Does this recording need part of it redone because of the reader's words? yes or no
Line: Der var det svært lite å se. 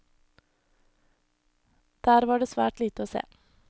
no